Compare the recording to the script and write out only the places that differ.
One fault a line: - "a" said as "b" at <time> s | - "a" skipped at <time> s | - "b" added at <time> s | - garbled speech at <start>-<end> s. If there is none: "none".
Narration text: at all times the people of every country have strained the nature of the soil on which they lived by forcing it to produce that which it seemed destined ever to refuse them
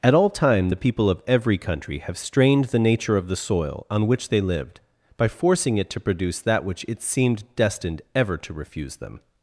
- "times" said as "time" at 0.3 s